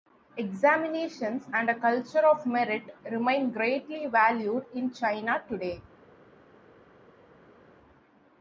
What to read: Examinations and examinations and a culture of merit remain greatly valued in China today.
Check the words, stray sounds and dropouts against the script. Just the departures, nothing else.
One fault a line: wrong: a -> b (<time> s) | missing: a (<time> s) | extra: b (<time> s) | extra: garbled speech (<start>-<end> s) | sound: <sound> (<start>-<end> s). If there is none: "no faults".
missing: examinations and (1.7 s)